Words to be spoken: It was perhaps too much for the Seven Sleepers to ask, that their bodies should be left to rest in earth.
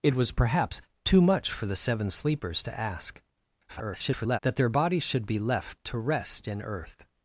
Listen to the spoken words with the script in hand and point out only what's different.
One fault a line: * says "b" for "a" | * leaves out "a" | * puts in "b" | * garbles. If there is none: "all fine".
* garbles